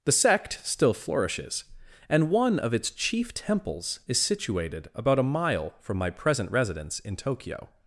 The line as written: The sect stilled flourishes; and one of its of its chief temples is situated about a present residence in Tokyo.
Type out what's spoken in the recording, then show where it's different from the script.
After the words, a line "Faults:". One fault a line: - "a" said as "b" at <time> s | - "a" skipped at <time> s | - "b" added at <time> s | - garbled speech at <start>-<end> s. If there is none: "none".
The sect still flourishes; and one of its chief temples is situated about a mile from my present residence in Tokyo.
Faults:
- "stilled" said as "still" at 0.6 s
- "of its" skipped at 2.9 s
- "mile from my" added at 5.2 s